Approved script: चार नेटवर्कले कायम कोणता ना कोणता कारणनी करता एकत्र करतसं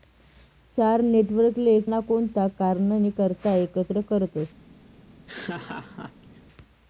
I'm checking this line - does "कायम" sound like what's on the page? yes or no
no